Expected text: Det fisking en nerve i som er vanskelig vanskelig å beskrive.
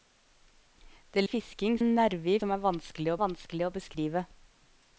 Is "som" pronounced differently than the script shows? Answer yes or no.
no